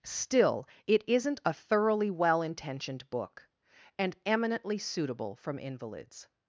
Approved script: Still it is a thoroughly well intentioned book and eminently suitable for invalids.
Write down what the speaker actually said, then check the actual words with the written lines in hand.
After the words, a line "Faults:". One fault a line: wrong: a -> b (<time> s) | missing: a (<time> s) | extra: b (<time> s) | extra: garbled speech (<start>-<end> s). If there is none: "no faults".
Still it isn't a thoroughly well intentioned book and eminently suitable from invalids.
Faults:
wrong: is -> isn't (1.1 s)
wrong: for -> from (5.4 s)